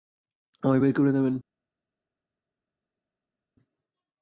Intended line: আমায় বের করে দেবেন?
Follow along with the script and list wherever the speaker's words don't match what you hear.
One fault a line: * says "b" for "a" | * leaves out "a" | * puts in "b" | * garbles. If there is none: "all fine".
all fine